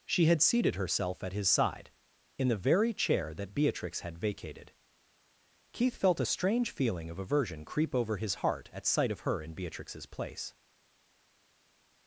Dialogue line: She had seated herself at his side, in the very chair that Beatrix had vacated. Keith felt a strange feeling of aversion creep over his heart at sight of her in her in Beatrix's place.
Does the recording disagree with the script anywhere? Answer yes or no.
yes